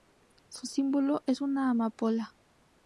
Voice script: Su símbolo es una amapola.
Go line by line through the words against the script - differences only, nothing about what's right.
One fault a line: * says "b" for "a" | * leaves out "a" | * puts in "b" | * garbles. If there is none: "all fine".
all fine